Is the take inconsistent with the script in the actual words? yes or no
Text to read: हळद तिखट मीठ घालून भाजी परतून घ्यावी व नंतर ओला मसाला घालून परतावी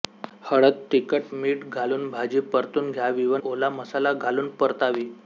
yes